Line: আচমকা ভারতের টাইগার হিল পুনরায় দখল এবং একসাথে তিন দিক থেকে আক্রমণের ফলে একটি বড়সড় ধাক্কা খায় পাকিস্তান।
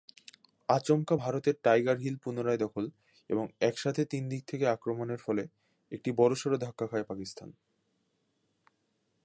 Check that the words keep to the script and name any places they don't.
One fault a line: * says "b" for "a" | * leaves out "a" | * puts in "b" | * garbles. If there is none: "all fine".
all fine